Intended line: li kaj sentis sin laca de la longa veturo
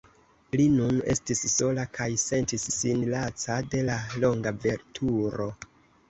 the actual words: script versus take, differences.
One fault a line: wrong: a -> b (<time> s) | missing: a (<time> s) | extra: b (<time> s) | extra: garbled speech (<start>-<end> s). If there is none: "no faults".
extra: nun estis sola (0.8 s)